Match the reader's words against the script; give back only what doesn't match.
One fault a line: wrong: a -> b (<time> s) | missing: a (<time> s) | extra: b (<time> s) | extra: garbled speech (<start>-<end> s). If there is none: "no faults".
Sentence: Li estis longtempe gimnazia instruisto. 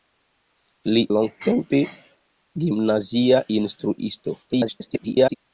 missing: estis (1.0 s)
extra: garbled speech (4.5-5.4 s)